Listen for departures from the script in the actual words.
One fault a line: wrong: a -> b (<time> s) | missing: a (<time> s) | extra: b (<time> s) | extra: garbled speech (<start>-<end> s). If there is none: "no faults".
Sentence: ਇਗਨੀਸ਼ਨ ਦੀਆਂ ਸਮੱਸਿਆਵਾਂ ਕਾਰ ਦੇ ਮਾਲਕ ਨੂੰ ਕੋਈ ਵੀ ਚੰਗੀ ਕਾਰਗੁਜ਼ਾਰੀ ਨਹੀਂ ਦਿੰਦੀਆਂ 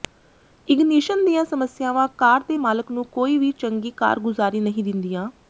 no faults